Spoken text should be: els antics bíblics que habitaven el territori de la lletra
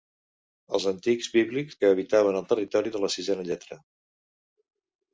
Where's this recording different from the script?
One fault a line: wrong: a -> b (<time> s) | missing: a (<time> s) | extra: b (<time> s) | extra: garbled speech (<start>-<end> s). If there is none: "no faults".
extra: sisena (3.2 s)